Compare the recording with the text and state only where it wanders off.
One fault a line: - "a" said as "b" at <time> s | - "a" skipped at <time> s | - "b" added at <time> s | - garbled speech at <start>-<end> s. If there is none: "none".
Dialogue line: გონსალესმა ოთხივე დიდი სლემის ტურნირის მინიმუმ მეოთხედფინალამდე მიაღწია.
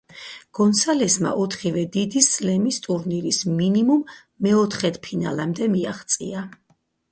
none